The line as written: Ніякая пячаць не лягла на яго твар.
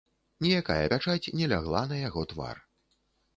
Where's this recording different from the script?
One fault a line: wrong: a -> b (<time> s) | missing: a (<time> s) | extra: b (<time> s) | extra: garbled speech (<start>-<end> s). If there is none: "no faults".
no faults